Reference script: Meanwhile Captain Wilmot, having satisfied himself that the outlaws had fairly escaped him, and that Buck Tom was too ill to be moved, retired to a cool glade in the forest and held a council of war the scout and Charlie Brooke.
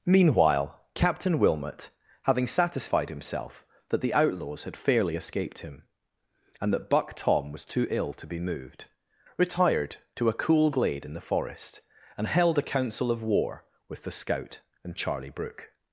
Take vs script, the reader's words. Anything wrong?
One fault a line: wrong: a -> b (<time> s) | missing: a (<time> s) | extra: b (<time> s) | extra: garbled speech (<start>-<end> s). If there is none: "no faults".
extra: with (13.9 s)